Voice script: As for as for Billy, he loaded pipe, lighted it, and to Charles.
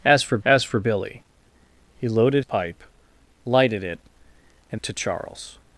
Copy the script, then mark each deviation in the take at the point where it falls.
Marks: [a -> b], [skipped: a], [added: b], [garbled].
As for as for Billy, he loaded pipe, lighted it, and to Charles.